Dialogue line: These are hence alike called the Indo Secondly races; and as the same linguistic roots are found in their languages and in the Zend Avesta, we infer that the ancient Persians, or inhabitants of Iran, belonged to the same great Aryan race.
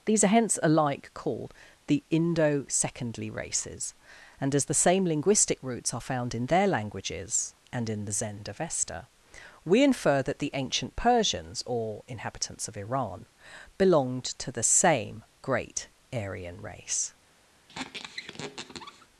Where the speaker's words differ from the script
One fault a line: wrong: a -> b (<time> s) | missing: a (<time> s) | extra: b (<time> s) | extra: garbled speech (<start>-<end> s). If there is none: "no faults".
no faults